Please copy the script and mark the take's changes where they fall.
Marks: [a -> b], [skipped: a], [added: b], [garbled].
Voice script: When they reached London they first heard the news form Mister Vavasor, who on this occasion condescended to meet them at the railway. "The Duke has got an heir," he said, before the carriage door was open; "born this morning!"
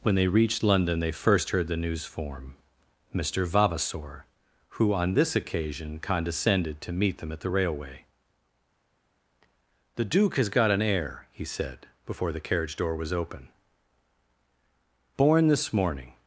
When they reached London they first heard the news form Mister Vavasor, who on this occasion condescended to meet them at the railway. "The Duke has got an heir," he said, before the carriage door was open; "born this morning!"